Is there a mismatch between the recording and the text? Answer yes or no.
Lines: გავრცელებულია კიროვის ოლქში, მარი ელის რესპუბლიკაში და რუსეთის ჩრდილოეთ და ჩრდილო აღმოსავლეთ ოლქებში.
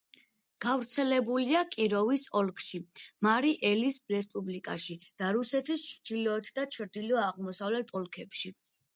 no